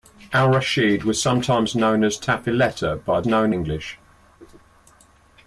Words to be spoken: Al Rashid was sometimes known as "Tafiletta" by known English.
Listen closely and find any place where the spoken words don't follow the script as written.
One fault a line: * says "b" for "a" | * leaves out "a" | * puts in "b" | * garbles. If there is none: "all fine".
all fine